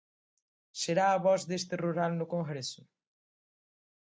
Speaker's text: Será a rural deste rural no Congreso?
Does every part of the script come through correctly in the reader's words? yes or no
no